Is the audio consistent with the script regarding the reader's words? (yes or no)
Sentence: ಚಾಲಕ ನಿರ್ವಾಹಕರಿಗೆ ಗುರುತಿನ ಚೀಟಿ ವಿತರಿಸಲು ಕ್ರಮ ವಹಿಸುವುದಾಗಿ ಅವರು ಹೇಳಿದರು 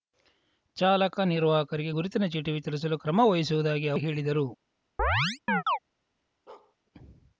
yes